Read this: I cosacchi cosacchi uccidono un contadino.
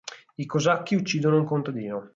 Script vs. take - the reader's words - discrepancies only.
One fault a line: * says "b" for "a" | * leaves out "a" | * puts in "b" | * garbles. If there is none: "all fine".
* leaves out "cosacchi"